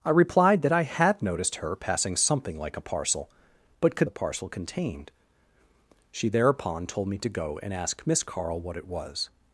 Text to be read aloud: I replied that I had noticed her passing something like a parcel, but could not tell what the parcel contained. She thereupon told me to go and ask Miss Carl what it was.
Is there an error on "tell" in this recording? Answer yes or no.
yes